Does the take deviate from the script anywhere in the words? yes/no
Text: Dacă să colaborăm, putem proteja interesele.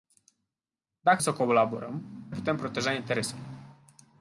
no